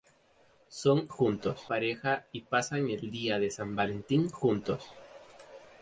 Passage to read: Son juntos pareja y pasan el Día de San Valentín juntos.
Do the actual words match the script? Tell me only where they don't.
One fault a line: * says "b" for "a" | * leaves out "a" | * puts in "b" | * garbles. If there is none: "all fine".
all fine